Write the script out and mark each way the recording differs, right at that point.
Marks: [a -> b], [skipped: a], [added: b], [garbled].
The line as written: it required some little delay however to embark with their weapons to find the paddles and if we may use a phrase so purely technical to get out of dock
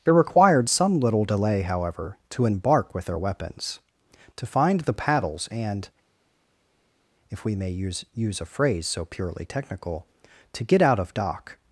it required some little delay however to embark with their weapons to find the paddles and if we may use [added: use] a phrase so purely technical to get out of dock